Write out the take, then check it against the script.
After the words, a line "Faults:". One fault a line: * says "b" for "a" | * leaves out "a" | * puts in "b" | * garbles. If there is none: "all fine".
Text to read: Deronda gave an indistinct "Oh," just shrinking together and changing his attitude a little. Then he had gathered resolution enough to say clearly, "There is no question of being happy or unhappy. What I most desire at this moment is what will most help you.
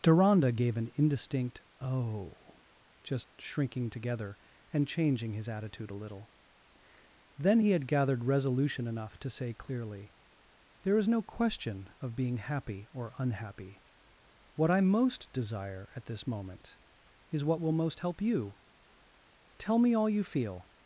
Deronda gave an indistinct "Oh," just shrinking together and changing his attitude a little. Then he had gathered resolution enough to say clearly, "There is no question of being happy or unhappy. What I most desire at this moment is what will most help you. Tell me all you feel
Faults:
* puts in "Tell me all you feel"